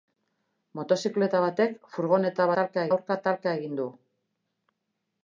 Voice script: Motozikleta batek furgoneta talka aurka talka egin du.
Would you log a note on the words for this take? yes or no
no